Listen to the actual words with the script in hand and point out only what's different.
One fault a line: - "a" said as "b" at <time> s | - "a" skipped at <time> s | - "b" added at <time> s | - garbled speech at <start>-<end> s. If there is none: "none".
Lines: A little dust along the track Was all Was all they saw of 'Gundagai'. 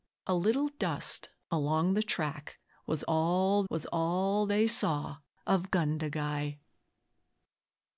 none